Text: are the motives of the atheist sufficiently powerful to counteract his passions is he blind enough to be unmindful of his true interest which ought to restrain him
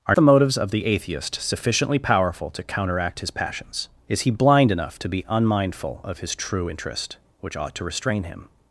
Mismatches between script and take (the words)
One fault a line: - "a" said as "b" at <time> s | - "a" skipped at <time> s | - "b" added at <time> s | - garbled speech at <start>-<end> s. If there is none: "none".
none